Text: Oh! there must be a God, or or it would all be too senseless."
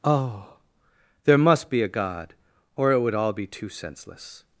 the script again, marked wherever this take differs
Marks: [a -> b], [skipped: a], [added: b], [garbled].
Oh! there must be a God, or [skipped: or] it would all be too senseless."